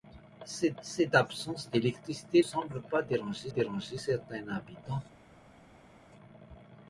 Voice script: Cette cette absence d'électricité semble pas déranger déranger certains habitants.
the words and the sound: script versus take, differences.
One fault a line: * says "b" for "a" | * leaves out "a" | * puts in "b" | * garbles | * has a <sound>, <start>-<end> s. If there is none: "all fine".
all fine